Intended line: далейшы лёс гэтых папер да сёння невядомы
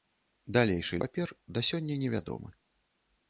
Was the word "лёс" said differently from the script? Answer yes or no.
yes